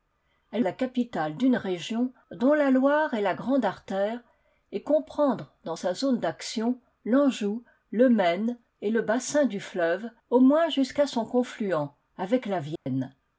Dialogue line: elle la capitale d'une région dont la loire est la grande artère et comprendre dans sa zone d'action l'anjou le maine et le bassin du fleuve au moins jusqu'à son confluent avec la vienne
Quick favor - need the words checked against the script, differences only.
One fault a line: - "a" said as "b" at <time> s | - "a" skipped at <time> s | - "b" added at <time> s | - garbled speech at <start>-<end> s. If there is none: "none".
none